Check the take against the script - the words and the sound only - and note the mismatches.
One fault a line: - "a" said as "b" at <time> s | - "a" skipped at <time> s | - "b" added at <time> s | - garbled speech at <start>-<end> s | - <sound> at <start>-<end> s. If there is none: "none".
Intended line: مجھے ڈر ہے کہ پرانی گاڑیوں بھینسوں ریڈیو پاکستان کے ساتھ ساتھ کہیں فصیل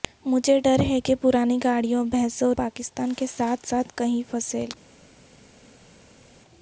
- "ریڈیو" skipped at 2.5 s